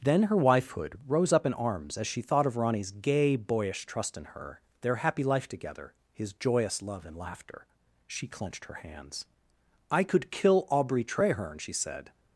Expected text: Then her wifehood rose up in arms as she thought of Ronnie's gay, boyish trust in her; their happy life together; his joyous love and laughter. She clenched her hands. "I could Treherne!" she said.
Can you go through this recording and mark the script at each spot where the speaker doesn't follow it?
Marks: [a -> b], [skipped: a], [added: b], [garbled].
Then her wifehood rose up in arms as she thought of Ronnie's gay, boyish trust in her; their happy life together; his joyous love and laughter. She clenched her hands. "I could [added: kill Aubrey] Treherne!" she said.